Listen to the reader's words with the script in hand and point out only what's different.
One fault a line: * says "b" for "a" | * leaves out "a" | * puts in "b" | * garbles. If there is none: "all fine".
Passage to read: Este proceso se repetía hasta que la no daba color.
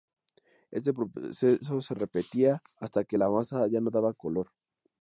* puts in "masa ya"